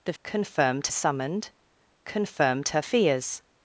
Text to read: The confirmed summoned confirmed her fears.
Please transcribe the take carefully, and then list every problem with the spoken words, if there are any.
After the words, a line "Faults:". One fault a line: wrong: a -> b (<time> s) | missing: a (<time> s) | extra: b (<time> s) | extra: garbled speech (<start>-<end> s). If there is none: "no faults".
The confirmed summoned confirmed her fears.
Faults:
no faults